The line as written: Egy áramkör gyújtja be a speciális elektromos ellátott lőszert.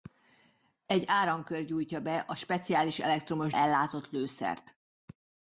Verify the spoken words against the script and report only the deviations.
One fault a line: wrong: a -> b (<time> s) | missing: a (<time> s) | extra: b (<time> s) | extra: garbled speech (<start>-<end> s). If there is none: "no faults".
no faults